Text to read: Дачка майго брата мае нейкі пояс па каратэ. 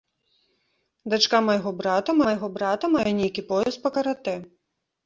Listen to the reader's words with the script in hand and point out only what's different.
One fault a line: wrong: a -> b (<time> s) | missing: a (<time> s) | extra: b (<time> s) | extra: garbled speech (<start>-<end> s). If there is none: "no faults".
extra: майго брата (2.3 s)